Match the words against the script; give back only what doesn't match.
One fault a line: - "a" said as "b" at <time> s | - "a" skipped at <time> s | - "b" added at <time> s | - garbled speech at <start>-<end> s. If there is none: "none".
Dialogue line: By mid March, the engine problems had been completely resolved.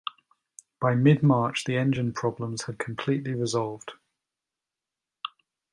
- "been" skipped at 2.8 s